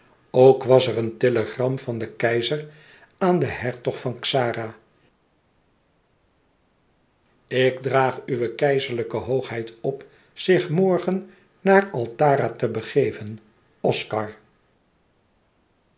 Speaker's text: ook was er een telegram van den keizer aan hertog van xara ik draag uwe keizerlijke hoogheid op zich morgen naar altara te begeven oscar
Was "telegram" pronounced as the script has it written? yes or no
yes